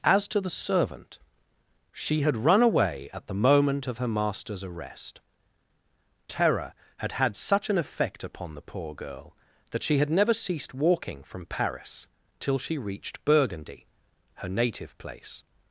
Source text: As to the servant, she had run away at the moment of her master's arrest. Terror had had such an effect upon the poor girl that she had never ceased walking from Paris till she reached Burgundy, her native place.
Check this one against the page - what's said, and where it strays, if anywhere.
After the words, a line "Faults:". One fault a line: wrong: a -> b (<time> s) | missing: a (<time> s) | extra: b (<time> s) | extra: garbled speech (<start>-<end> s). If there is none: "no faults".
As to the servant, she had run away at the moment of her master's arrest. Terror had had such an effect upon the poor girl that she had never ceased walking from Paris till she reached Burgundy, her native place.
Faults:
no faults